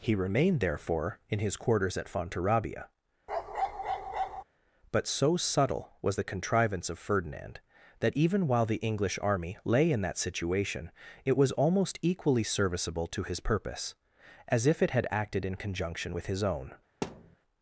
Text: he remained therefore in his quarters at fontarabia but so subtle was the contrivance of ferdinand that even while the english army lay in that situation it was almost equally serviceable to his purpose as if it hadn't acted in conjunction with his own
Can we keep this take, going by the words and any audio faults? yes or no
no